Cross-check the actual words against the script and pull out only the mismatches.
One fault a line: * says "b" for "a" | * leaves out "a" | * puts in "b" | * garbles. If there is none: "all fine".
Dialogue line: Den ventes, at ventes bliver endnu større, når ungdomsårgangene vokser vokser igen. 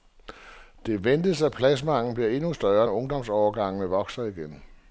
* says "Det" for "Den"
* says "pladsmanglen" for "ventes"
* leaves out "vokser"